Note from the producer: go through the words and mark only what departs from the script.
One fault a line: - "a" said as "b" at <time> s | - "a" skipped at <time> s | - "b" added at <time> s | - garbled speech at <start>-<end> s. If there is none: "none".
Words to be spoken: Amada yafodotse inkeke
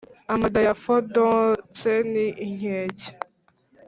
- "ni" added at 2.1 s